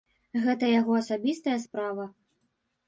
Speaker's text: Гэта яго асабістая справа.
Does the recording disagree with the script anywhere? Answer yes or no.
no